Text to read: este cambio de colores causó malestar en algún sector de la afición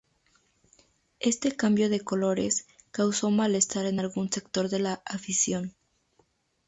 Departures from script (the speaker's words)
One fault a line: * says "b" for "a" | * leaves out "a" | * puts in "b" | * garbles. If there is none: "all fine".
all fine